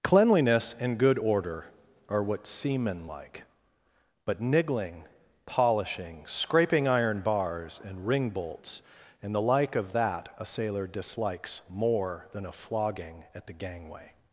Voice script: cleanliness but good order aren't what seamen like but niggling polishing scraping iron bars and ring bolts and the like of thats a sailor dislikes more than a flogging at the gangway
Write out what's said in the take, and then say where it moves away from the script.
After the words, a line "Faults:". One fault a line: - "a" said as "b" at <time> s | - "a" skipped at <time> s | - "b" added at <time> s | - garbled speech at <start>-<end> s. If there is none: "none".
cleanliness and good order are what seamen like but niggling polishing scraping iron bars and ring bolts and the like of that a sailor dislikes more than a flogging at the gangway
Faults:
- "but" said as "and" at 0.8 s
- "aren't" said as "are" at 2.1 s
- "thats" said as "that" at 9.9 s